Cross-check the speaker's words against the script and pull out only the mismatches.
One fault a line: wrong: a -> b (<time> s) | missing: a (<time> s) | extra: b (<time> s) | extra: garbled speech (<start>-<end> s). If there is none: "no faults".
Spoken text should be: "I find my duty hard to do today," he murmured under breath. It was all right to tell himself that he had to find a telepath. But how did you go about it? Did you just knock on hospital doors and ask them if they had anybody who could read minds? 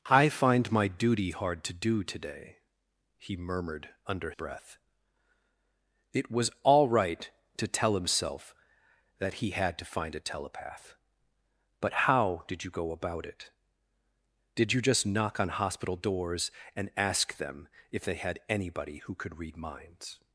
no faults